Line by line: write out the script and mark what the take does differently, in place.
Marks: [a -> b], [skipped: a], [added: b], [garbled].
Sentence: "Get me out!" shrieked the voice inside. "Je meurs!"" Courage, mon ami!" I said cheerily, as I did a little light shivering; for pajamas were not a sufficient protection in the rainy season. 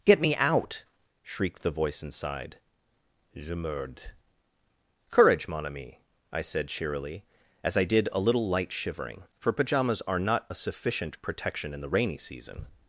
"Get me out!" shrieked the voice inside. "Je meurs!"" Courage, mon ami!" I said cheerily, as I did a little light shivering; for pajamas [were -> are] not a sufficient protection in the rainy season.